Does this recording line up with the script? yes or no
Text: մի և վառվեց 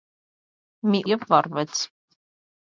yes